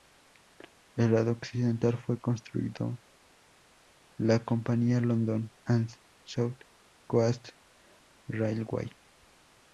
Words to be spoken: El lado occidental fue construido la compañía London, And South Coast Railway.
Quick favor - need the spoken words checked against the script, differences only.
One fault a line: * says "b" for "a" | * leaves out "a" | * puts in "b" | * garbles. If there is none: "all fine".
all fine